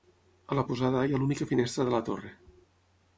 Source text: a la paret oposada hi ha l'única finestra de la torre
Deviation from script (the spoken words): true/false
true